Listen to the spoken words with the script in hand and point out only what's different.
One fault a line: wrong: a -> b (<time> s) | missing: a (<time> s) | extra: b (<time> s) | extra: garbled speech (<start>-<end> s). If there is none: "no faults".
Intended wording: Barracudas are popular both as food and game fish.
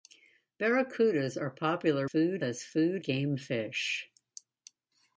wrong: both -> food (2.0 s)
missing: and (3.0 s)